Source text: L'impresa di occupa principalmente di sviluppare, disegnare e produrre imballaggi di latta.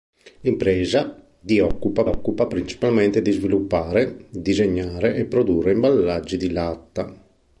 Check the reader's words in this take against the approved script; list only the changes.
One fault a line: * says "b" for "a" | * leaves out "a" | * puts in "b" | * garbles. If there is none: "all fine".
* puts in "occupa"